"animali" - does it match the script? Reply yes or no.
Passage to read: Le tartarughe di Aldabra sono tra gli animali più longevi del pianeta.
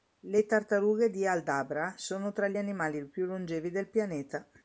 yes